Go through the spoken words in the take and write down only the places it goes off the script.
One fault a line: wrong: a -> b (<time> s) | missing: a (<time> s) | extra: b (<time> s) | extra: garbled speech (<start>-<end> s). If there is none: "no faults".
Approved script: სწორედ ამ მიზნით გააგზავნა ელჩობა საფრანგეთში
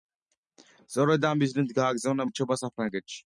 no faults